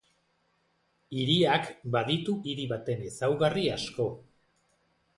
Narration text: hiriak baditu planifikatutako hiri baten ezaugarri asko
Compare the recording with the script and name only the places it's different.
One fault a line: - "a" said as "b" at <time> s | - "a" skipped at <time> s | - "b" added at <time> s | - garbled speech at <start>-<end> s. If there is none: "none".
- "planifikatutako" skipped at 2.4 s